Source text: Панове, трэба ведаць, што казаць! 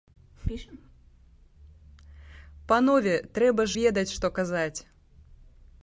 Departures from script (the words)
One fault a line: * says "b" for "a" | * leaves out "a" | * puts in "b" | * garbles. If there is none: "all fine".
all fine